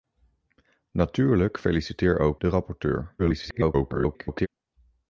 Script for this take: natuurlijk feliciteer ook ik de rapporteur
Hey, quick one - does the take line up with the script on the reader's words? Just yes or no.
no